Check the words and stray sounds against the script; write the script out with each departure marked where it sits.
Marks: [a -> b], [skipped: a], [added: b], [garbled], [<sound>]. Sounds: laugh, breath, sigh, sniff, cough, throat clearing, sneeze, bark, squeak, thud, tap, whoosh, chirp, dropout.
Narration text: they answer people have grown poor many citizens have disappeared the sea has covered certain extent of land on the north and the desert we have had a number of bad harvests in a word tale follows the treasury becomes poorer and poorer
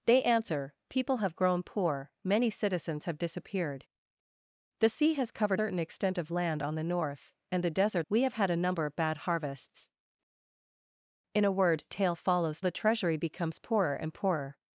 they answer people have grown poor many citizens have disappeared the sea has covered certain extent of land on the north and the desert we have had a number of bad harvests in a word tale follows the treasury becomes poorer and poorer